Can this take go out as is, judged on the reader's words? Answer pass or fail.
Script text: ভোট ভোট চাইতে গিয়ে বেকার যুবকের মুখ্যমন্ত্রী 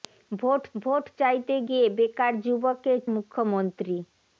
pass